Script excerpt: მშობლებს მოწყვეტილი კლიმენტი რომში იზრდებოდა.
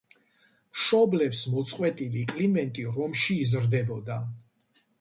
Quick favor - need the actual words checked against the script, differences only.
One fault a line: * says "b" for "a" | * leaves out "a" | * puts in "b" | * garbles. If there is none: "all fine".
all fine